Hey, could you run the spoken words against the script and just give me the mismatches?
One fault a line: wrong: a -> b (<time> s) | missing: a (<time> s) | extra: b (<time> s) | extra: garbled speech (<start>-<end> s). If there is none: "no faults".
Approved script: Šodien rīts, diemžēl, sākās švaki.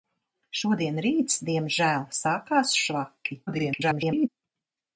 extra: garbled speech (3.5-4.3 s)